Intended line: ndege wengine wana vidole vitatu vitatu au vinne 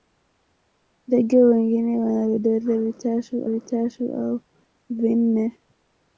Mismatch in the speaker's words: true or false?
false